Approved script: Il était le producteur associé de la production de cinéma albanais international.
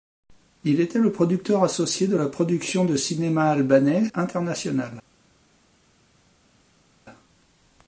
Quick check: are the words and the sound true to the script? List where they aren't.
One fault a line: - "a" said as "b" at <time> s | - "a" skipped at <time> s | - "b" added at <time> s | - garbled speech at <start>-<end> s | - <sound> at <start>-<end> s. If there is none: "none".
none